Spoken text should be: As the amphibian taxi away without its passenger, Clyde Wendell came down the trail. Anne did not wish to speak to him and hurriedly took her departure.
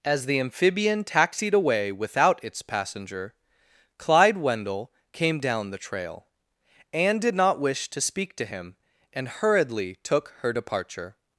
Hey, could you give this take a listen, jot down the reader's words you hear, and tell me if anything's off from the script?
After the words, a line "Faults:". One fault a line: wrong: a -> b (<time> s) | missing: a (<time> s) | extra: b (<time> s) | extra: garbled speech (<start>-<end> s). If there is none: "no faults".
As the amphibian taxied away without its passenger, Clyde Wendell came down the trail. Anne did not wish to speak to him and hurriedly took her departure.
Faults:
wrong: taxi -> taxied (1.0 s)